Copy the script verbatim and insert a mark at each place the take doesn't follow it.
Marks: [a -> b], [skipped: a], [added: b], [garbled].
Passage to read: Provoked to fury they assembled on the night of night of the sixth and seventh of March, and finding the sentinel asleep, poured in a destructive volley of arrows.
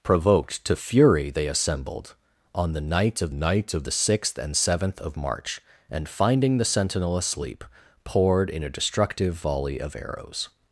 Provoked to fury they assembled on the night of night of the sixth and seventh of March, and finding the sentinel asleep, poured in a destructive volley of arrows.